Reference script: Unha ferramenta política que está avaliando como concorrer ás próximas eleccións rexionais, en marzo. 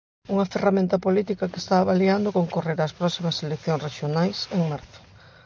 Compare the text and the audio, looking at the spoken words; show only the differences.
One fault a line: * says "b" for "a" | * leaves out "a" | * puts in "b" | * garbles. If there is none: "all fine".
* leaves out "como"